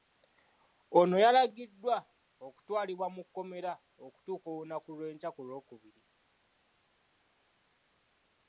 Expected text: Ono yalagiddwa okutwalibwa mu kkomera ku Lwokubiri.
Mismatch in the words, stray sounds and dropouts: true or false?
true